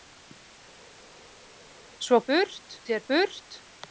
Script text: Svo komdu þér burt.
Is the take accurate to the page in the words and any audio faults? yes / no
no